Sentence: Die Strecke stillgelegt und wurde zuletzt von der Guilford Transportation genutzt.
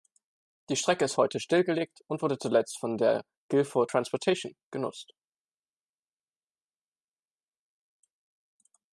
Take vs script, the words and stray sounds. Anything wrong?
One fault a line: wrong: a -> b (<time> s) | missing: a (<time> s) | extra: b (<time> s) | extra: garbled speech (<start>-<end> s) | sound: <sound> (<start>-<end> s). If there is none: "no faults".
extra: ist heute (1.1 s)